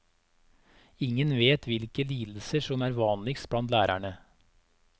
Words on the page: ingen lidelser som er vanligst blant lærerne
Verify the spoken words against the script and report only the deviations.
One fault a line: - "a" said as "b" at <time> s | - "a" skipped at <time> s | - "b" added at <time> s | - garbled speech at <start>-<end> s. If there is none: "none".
- "vet hvilke" added at 1.4 s